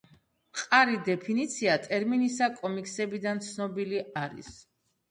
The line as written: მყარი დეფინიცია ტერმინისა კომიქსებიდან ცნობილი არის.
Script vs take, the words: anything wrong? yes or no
no